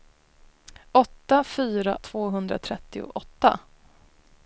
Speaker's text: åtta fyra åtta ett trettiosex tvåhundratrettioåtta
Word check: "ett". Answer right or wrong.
wrong